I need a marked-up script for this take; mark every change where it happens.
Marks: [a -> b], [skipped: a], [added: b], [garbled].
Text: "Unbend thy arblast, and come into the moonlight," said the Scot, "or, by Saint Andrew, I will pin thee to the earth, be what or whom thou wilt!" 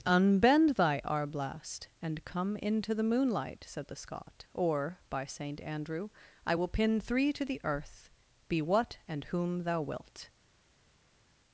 "Unbend thy arblast, and come into the moonlight," said the Scot, "or, by Saint Andrew, I will pin [thee -> three] to the earth, be what [or -> and] whom thou wilt!"